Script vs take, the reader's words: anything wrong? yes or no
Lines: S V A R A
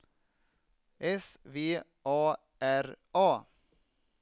no